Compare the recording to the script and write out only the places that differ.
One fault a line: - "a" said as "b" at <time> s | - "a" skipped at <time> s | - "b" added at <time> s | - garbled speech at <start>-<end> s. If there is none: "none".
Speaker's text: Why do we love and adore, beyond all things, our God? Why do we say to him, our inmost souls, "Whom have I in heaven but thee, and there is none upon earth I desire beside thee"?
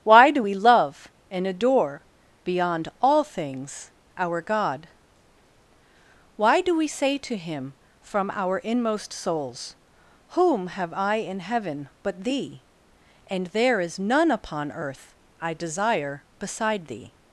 - "from" added at 8.0 s